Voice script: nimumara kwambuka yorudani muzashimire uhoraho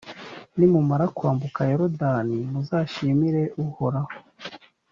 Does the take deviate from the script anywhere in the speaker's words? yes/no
no